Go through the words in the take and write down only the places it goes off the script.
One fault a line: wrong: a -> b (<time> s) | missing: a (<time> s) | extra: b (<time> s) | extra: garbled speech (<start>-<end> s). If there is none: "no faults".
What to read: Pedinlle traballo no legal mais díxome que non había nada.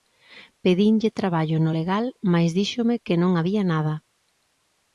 no faults